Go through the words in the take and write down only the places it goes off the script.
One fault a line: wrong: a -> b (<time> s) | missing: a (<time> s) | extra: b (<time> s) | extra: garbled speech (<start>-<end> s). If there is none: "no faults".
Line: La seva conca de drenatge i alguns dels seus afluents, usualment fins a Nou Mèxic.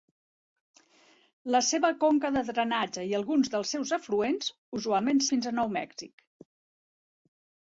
no faults